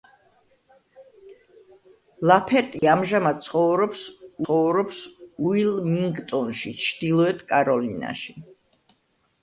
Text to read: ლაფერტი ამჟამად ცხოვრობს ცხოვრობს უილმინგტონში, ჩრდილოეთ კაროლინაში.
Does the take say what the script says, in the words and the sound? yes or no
no